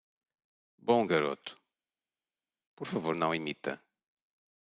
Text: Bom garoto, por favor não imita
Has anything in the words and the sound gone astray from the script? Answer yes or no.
no